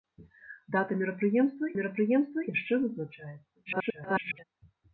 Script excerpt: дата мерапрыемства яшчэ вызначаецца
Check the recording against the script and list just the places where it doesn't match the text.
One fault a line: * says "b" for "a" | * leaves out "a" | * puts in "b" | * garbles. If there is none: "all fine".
* puts in "мерапрыемства"
* garbles